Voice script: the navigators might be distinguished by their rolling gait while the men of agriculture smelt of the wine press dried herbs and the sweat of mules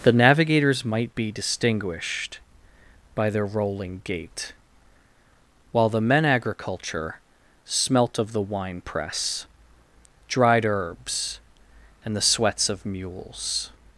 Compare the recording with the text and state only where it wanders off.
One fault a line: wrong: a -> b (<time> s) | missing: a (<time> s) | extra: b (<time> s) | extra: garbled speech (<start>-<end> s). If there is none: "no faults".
missing: of (6.2 s)
wrong: sweat -> sweats (12.2 s)